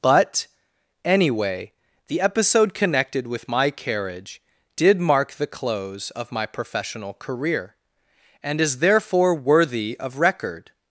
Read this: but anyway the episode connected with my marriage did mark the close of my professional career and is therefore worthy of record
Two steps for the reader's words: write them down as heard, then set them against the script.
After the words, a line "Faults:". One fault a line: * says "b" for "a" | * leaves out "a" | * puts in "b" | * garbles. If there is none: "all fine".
but anyway the episode connected with my carriage did mark the close of my professional career and is therefore worthy of record
Faults:
* says "carriage" for "marriage"